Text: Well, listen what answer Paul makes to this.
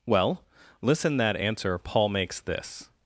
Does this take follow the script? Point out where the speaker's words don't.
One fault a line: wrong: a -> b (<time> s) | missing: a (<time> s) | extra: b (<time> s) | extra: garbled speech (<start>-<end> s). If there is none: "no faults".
wrong: what -> that (1.2 s)
missing: to (2.4 s)